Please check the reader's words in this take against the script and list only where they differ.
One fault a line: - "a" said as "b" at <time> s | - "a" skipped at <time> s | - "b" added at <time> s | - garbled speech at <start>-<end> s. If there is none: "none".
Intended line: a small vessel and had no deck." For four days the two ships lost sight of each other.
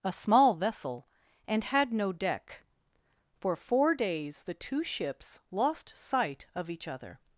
none